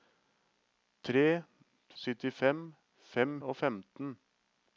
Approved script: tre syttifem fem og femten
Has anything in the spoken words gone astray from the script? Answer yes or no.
no